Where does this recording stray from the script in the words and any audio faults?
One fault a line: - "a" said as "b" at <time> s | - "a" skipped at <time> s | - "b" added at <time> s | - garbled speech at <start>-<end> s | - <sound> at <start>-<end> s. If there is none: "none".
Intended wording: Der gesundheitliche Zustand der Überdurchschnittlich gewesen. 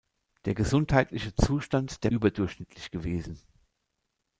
none